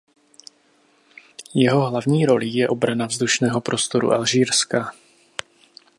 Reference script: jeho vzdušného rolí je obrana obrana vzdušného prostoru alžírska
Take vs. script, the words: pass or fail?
fail